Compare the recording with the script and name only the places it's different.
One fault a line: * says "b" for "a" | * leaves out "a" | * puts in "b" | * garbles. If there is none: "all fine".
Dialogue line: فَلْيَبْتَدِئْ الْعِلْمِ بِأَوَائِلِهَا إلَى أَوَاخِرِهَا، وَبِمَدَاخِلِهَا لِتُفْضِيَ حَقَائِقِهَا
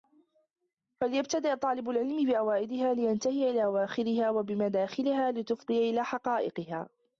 * puts in "طَالِبُ"
* puts in "لِيَنْتَهِيَ"
* puts in "إلَى"